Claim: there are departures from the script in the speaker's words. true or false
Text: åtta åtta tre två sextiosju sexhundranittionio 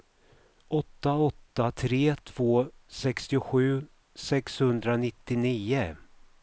false